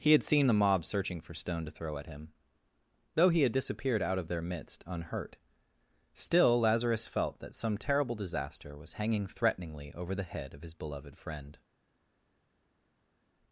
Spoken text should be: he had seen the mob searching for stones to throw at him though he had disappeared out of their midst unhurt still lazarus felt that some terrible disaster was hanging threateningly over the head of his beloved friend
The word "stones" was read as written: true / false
false